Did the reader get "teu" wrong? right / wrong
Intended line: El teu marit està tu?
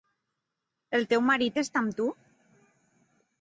right